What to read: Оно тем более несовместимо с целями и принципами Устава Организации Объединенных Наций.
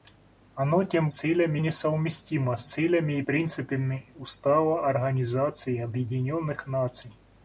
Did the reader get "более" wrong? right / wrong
wrong